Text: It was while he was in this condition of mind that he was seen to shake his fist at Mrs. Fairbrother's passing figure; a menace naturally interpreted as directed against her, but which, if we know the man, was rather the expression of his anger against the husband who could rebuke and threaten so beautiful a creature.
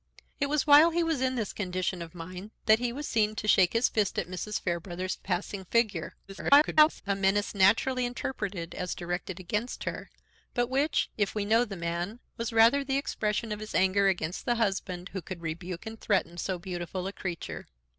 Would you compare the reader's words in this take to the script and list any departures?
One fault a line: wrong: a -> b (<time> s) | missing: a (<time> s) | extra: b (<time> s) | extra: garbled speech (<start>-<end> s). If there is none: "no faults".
extra: garbled speech (6.3-7.0 s)